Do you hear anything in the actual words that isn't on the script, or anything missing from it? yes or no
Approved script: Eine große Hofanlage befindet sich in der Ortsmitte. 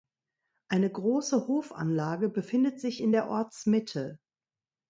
no